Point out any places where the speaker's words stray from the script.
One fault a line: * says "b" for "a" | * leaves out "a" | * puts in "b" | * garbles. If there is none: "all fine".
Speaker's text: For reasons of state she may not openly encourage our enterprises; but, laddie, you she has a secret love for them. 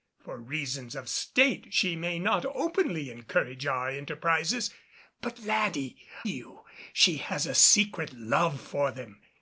all fine